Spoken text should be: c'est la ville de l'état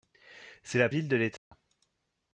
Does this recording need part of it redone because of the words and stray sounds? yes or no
yes